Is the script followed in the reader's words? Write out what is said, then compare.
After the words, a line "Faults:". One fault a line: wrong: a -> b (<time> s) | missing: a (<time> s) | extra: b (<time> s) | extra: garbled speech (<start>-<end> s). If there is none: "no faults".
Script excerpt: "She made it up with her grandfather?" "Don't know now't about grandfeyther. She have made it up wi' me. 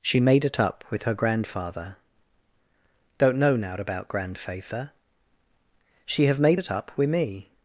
"She made it up with her grandfather?" "Don't know now't about grandfeyther. She have made it up wi' me.
Faults:
no faults